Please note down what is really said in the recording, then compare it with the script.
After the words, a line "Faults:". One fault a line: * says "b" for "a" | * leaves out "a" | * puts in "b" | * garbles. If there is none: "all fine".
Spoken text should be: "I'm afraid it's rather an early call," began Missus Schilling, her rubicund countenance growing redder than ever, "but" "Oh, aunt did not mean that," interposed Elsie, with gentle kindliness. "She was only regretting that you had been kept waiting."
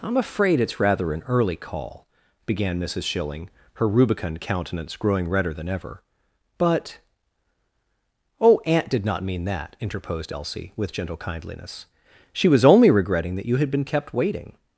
"I'm afraid it's rather an early call," began Missus Schilling, her rubicund countenance growing redder than ever, "but" "Oh, aunt did not mean that," interposed Elsie, with gentle kindliness. "She was only regretting that you had been kept waiting."
Faults:
all fine